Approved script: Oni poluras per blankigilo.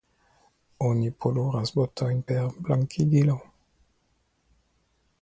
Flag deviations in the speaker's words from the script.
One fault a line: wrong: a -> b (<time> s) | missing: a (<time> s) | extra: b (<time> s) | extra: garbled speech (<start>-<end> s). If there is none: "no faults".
extra: botojn (1.7 s)